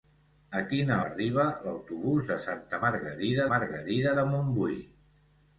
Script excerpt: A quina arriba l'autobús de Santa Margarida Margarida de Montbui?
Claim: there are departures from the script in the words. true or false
false